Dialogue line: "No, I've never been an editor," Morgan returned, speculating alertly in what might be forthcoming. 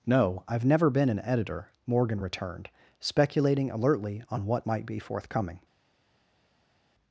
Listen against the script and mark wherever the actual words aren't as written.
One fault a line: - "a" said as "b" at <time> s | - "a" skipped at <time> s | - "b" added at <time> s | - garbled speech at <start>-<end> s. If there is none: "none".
- "in" said as "on" at 4.3 s